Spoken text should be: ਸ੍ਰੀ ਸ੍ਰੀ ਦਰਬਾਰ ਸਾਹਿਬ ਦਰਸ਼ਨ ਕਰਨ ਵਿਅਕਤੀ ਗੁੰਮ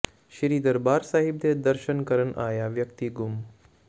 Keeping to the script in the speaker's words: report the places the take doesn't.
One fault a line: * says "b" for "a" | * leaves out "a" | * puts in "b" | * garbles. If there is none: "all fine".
* leaves out "ਸ੍ਰੀ"
* puts in "ਦੇ"
* puts in "ਆਇਆ"